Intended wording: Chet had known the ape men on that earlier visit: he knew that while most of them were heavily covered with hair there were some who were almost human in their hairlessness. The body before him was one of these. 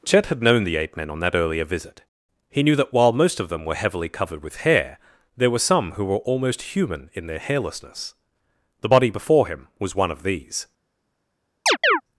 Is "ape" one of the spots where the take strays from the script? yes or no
no